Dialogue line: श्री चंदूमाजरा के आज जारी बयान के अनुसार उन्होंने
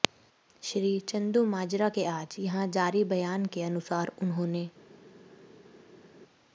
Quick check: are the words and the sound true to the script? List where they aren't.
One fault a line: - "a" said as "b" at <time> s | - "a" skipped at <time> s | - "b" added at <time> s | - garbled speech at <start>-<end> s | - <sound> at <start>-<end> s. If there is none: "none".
- "यहां" added at 2.4 s